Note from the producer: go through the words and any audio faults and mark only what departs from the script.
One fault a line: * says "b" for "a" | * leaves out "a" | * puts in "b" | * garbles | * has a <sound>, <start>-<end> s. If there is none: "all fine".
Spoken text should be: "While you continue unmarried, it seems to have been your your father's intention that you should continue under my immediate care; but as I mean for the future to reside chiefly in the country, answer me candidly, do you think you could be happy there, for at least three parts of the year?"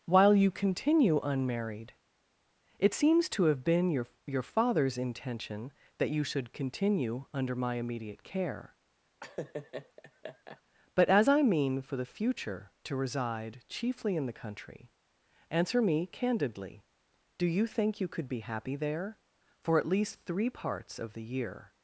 * has a laugh, 9.2-10.6 s